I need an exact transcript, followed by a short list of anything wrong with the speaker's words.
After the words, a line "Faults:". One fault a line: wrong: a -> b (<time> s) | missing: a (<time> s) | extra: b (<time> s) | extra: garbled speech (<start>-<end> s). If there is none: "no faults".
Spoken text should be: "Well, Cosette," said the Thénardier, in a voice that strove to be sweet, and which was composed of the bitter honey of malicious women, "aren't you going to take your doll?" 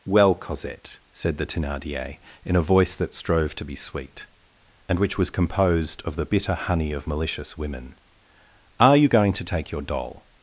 "Well, Cosette," said the Thénardier, in a voice that strove to be sweet, and which was composed of the bitter honey of malicious women, "are you going to take your doll?"
Faults:
wrong: aren't -> are (8.8 s)